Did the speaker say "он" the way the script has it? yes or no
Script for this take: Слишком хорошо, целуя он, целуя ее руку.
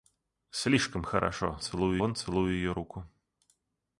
yes